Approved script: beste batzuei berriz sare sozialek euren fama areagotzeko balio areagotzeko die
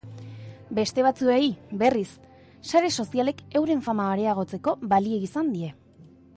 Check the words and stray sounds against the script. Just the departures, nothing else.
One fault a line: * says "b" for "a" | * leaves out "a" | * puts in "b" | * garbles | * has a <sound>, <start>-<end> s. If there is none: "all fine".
* says "izan" for "areagotzeko"